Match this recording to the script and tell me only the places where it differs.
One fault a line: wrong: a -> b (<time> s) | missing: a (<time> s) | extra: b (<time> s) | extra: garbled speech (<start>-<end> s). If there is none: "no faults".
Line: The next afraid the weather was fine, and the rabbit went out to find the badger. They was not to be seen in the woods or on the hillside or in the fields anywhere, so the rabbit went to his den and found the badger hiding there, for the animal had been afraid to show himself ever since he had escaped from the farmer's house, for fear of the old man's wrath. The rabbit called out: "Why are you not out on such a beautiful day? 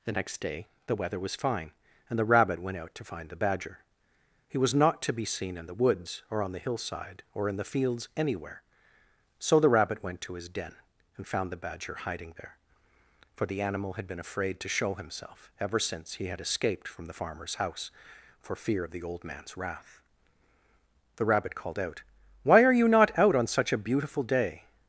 wrong: afraid -> day (0.4 s)
wrong: They -> He (4.5 s)